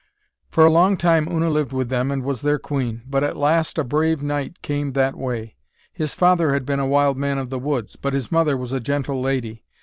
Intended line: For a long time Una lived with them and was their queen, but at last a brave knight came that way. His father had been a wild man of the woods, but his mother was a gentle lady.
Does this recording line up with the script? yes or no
yes